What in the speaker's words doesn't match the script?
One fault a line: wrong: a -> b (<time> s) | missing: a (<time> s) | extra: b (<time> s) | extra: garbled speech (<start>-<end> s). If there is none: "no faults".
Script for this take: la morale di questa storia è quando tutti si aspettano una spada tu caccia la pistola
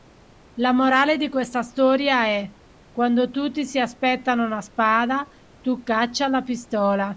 no faults